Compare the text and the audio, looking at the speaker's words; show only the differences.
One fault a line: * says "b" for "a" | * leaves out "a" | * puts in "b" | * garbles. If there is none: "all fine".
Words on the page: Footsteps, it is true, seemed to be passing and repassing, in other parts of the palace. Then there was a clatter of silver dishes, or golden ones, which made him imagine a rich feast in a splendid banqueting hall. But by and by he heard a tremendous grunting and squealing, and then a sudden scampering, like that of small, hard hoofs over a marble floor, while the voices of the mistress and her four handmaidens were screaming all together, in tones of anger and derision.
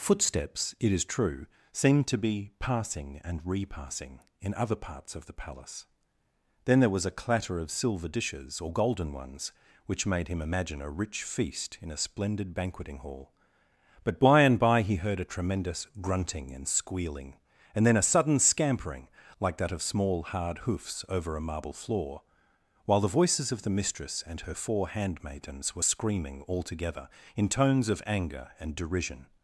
all fine